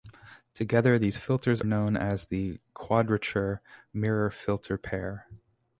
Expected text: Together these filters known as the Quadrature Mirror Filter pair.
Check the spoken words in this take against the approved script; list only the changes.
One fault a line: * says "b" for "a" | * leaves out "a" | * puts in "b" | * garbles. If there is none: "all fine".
all fine